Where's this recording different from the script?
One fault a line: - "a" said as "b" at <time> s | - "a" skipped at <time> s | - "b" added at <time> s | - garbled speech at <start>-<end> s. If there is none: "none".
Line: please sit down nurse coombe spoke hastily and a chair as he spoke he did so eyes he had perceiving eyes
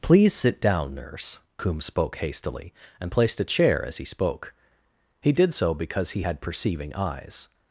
- "placed" added at 3.1 s
- "eyes" said as "because" at 5.7 s